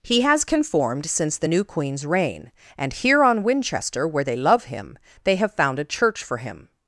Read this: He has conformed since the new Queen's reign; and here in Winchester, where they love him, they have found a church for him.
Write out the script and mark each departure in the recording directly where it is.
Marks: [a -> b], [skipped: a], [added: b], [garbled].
He has conformed since the new Queen's reign; and here [in -> on] Winchester, where they love him, they have found a church for him.